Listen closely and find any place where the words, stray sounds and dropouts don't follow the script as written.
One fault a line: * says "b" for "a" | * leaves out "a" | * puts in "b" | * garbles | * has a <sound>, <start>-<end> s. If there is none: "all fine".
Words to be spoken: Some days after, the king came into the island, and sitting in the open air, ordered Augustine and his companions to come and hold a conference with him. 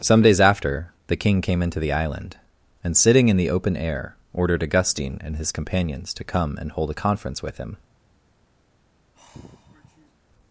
* has a sigh, 9.2-10.1 s